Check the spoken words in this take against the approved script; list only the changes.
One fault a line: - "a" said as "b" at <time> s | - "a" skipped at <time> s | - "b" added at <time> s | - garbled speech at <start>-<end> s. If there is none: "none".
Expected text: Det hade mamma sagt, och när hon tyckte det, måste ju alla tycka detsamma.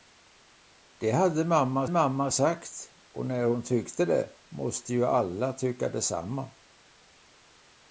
- "mamma" added at 1.9 s